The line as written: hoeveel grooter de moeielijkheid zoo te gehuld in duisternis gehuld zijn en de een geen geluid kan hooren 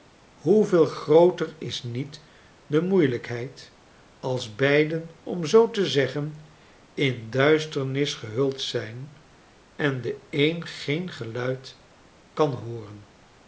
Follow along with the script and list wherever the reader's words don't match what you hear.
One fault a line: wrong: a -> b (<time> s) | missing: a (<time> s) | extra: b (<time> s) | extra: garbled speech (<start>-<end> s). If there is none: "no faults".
extra: is niet (1.6 s)
extra: als beiden om (4.2 s)
wrong: gehuld -> zeggen (5.9 s)